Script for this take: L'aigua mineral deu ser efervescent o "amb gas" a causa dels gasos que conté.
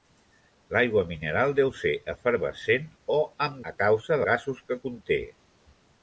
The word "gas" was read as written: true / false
false